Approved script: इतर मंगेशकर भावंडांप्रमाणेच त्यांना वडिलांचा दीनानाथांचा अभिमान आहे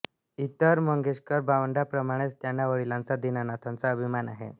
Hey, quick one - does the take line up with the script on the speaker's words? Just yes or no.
yes